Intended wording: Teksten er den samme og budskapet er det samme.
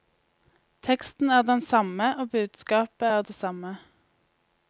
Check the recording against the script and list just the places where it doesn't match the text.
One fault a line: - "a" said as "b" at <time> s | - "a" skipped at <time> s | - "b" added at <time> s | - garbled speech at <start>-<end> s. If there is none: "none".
none